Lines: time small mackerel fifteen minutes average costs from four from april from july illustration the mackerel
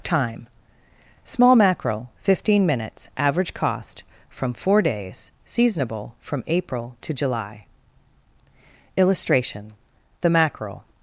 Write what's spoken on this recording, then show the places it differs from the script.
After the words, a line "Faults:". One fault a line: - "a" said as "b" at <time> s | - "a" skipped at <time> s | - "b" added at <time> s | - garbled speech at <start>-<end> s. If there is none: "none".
time small mackerel fifteen minutes average cost from four days seasonable from april to july illustration the mackerel
Faults:
- "costs" said as "cost" at 3.5 s
- "days seasonable" added at 4.8 s
- "from" said as "to" at 7.0 s